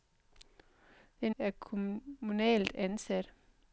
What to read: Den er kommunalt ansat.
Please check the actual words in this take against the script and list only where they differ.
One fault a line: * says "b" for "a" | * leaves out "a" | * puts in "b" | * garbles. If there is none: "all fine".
all fine